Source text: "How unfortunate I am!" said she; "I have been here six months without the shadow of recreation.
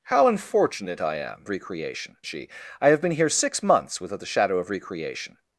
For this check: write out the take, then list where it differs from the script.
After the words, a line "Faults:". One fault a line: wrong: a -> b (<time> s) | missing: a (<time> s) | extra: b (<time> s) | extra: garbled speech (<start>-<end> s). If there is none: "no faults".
"How unfortunate I am!" recreation she; "I have been here six months without the shadow of recreation.
Faults:
wrong: said -> recreation (1.5 s)